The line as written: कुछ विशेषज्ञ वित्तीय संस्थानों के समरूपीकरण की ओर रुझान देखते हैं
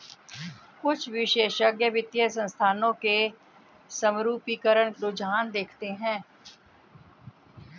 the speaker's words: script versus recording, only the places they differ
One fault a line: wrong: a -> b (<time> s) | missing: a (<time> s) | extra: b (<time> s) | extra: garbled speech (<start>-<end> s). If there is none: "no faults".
missing: की ओर (4.9 s)